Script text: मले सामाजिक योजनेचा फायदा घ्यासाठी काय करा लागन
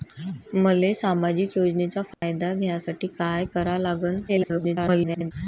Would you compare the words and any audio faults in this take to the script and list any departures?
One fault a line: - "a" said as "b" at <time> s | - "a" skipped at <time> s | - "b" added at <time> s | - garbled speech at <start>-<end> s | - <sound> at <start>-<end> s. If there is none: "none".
- dropout at 2.1-2.2 s
- garbled speech at 4.3-5.3 s